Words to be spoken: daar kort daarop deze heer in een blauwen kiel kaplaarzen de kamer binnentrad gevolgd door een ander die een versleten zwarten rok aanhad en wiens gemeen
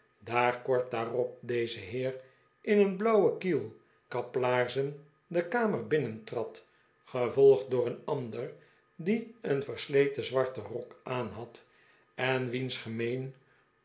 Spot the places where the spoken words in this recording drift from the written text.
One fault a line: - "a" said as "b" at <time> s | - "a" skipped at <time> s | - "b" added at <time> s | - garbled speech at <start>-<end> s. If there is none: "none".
none